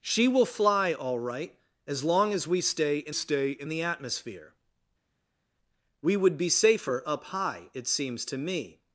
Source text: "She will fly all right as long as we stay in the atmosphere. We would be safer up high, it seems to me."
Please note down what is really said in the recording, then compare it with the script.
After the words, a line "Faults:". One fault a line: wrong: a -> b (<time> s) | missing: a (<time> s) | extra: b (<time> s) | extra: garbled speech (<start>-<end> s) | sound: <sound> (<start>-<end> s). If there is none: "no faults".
"She will fly all right as long as we stay in stay in the atmosphere. We would be safer up high, it seems to me."
Faults:
extra: stay in (3.1 s)